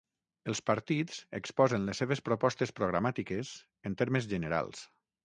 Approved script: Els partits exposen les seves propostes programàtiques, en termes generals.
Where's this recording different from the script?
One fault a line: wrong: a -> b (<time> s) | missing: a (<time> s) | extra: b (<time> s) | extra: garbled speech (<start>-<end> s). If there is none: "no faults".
no faults